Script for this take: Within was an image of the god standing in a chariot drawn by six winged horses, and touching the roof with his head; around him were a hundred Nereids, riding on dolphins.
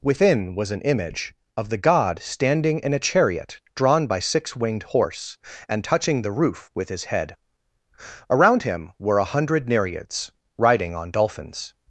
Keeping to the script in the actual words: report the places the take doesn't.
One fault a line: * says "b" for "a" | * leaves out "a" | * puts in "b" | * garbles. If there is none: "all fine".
* says "horse" for "horses"